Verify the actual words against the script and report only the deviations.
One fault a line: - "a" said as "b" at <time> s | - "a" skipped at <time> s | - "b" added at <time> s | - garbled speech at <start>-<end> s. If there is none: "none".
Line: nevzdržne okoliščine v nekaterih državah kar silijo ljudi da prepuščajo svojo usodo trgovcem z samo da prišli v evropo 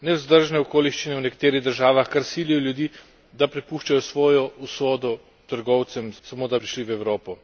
none